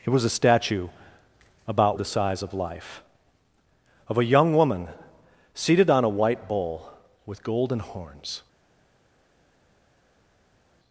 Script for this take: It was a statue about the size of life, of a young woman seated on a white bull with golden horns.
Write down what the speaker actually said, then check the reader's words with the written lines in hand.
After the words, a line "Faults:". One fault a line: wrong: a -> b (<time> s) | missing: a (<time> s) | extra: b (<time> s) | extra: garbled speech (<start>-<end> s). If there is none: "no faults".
It was a statue about the size of life, of a young woman seated on a white bull with golden horns.
Faults:
no faults